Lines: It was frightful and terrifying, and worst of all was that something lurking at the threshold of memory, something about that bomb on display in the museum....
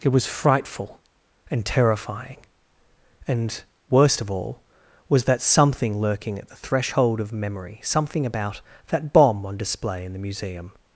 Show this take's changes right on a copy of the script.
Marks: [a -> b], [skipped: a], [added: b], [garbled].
It was frightful and terrifying, and worst of all was that something lurking at the threshold of memory, something about that bomb on display in the museum....